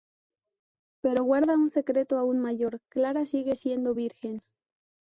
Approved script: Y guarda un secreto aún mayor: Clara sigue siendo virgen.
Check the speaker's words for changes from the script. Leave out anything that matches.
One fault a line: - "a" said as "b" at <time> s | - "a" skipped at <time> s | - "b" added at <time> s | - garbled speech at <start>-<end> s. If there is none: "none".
- "Y" said as "Pero" at 1.0 s